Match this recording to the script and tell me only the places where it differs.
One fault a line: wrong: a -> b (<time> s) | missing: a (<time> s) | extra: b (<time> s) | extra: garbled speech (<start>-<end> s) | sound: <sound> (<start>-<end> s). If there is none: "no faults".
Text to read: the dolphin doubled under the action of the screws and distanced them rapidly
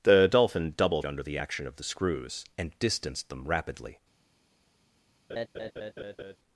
sound: laugh (5.3-6.4 s)